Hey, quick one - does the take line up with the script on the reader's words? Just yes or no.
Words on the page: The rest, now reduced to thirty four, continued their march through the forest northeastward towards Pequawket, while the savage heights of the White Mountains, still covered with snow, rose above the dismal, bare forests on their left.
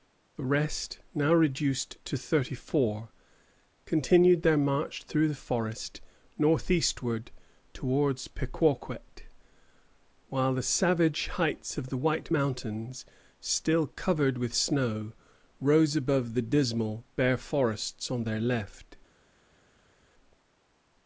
yes